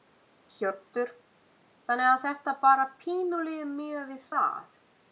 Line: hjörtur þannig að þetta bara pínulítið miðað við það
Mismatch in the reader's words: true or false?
false